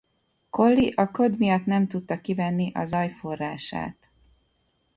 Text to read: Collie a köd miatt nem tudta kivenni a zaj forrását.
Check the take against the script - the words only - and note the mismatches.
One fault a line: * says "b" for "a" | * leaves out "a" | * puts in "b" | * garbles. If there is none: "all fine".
all fine